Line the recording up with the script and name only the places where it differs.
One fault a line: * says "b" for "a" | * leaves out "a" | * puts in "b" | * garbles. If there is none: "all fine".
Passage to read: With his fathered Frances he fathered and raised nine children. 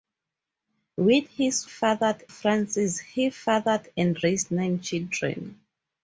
all fine